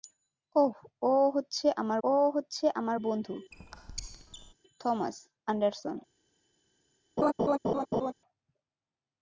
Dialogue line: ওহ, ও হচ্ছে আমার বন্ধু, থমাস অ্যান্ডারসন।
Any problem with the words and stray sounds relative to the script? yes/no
yes